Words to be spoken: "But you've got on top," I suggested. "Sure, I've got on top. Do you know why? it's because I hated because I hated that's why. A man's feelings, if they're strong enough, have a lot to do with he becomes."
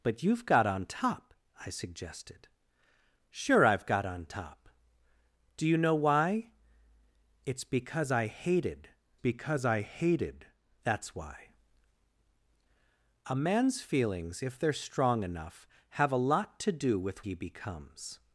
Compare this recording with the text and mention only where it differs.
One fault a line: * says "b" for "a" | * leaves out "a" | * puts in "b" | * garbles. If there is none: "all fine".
all fine